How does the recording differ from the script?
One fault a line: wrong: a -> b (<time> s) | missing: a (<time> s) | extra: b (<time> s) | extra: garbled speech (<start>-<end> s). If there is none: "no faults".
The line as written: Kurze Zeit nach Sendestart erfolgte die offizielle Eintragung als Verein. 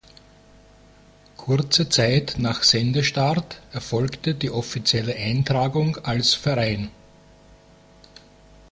no faults